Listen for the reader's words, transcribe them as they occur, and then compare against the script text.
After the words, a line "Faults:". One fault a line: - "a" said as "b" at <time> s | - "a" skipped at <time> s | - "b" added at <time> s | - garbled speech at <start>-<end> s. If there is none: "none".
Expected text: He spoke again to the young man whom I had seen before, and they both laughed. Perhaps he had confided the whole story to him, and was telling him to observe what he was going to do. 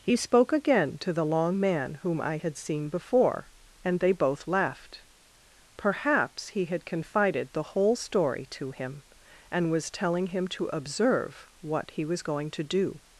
He spoke again to the long man whom I had seen before, and they both laughed. Perhaps he had confided the whole story to him, and was telling him to observe what he was going to do.
Faults:
- "young" said as "long" at 1.2 s